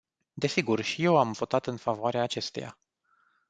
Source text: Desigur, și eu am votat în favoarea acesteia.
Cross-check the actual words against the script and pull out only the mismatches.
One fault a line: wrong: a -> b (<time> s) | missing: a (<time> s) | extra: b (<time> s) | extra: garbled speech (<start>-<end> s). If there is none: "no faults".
no faults